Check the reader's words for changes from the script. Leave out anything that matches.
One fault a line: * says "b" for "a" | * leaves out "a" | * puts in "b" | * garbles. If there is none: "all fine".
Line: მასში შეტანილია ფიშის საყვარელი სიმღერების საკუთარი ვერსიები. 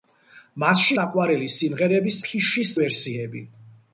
* leaves out "შეტანილია ფიშის"
* says "ფიშის" for "საკუთარი"